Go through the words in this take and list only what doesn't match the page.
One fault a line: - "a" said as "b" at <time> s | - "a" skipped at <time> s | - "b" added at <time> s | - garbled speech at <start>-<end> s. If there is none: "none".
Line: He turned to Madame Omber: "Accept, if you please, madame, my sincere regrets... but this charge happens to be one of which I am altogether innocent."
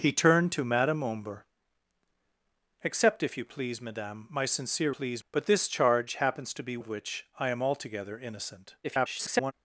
- "regrets" said as "please" at 4.9 s
- "one" skipped at 6.8 s
- garbled speech at 8.8-9.5 s